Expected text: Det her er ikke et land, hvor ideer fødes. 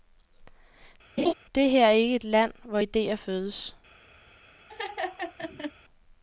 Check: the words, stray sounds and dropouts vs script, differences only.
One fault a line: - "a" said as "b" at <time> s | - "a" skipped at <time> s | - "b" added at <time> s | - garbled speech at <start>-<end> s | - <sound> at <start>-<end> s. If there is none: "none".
- laugh at 1.2-1.3 s
- laugh at 4.7-5.7 s